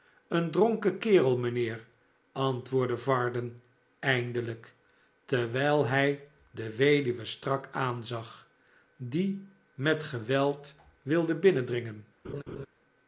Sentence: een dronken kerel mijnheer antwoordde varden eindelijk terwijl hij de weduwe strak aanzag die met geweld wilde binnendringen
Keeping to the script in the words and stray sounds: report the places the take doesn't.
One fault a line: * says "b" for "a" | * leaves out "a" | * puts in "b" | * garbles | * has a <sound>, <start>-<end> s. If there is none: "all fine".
* has a laugh, 12.2-12.7 s